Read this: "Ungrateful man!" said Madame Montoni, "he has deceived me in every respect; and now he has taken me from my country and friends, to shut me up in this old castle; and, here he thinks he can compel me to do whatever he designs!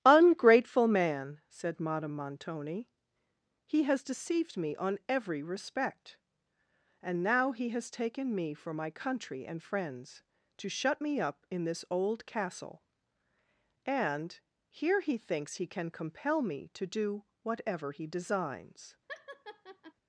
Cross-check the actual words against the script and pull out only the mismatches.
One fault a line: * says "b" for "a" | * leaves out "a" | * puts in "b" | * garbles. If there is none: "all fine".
* says "on" for "in"
* says "for" for "from"